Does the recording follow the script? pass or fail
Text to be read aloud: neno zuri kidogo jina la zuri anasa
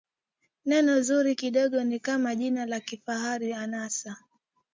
fail